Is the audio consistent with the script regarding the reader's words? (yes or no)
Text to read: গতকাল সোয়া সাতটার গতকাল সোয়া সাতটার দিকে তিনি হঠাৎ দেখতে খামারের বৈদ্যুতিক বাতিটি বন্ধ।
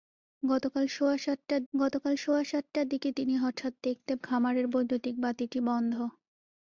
yes